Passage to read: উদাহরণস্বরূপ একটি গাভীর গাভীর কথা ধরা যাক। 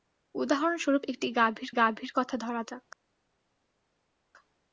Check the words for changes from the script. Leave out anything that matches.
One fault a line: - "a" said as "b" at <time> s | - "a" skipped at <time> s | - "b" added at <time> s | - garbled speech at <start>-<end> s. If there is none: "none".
none